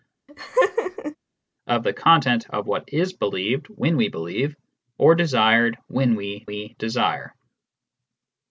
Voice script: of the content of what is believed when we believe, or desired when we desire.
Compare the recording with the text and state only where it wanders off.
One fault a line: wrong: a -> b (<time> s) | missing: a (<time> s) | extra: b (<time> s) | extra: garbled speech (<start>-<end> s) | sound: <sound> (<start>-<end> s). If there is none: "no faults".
sound: laugh (0.3-1.2 s)
extra: we (6.4 s)